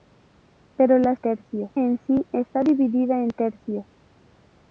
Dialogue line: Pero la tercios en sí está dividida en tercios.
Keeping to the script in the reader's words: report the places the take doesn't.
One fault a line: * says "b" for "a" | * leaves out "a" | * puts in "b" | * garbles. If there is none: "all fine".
all fine